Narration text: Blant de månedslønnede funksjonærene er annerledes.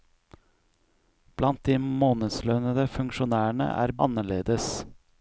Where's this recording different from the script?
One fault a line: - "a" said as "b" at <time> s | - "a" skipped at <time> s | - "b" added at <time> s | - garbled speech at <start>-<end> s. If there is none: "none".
none